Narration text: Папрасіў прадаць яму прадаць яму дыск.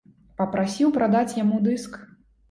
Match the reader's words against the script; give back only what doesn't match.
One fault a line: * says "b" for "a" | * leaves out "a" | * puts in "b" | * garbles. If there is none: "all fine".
* leaves out "прадаць яму"